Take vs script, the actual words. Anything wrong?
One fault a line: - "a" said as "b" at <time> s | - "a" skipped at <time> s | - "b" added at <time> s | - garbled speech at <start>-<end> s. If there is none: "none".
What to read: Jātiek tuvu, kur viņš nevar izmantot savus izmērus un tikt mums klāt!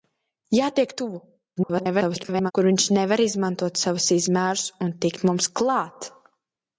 - garbled speech at 1.6-2.5 s